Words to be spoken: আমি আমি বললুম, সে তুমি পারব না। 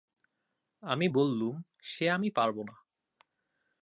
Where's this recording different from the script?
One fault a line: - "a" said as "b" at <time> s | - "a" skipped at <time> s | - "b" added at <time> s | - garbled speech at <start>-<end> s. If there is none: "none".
- "আমি" skipped at 1.1 s
- "তুমি" said as "আমি" at 2.1 s